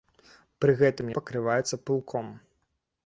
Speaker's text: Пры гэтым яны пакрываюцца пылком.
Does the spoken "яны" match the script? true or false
false